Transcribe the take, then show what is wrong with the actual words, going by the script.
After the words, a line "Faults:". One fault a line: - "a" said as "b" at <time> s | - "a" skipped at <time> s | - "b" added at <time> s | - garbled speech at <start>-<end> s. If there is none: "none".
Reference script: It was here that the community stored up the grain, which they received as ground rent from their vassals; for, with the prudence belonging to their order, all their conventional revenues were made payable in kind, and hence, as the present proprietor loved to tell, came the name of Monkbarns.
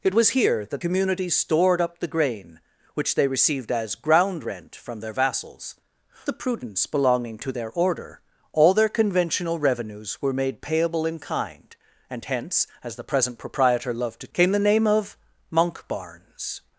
It was here that community stored up the grain, which they received as ground rent from their vassals; the prudence belonging to their order, all their conventional revenues were made payable in kind, and hence, as the present proprietor loved to came the name of Monkbarns.
Faults:
- "the" skipped at 0.8 s
- "for with" skipped at 5.8 s
- "tell" skipped at 14.3 s